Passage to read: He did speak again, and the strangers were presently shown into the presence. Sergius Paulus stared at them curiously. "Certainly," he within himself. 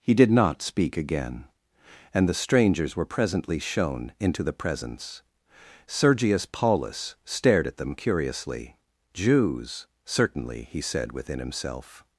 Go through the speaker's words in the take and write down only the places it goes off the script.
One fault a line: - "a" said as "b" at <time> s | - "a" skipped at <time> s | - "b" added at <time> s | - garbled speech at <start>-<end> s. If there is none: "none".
- "not" added at 0.3 s
- "Jews" added at 9.1 s
- "said" added at 10.8 s